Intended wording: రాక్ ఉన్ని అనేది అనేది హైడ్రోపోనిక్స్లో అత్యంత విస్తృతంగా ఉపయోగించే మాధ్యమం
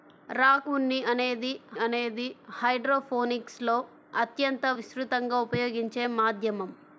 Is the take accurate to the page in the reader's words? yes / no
yes